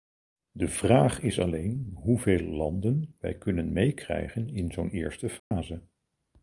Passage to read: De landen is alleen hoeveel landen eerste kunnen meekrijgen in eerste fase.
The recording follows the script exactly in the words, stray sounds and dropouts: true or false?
false